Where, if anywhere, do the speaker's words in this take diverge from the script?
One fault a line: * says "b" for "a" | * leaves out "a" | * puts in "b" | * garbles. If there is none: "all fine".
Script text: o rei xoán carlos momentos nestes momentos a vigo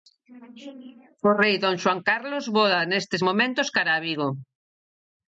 * puts in "don"
* says "voa" for "momentos"
* puts in "cara"